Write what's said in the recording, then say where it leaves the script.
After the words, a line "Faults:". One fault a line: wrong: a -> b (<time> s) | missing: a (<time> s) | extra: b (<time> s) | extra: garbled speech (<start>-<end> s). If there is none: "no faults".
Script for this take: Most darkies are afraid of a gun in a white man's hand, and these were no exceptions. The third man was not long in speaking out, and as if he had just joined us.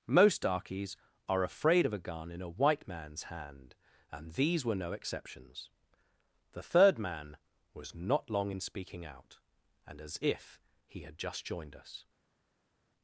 Most darkies are afraid of a gun in a white man's hand, and these were no exceptions. The third man was not long in speaking out, and as if he had just joined us.
Faults:
no faults